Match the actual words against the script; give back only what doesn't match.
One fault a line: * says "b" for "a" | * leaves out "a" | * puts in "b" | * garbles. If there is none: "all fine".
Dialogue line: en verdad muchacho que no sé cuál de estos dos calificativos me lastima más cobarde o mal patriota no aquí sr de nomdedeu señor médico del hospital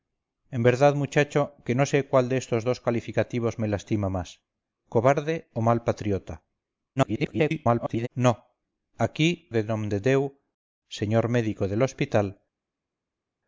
* garbles
* leaves out "sr"